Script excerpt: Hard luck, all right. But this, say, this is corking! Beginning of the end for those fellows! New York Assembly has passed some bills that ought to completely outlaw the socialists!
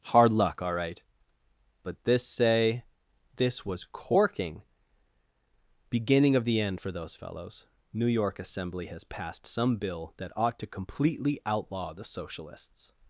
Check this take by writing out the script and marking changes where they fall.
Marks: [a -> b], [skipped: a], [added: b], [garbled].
Hard luck, all right. But this, say, this [is -> was] corking! Beginning of the end for those fellows! New York Assembly has passed some [bills -> bill] that ought to completely outlaw the socialists!